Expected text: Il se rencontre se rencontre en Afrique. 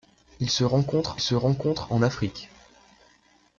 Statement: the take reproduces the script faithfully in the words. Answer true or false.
true